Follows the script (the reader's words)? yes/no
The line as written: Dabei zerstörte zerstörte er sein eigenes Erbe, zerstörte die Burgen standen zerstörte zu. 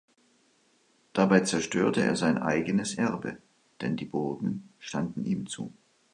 no